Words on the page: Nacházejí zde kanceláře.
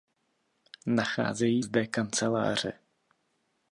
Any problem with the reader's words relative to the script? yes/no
no